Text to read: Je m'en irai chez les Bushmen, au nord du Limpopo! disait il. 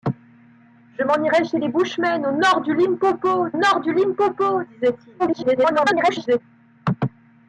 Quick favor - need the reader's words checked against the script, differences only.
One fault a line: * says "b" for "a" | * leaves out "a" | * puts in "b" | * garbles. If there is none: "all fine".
* puts in "nord du Limpopo"
* garbles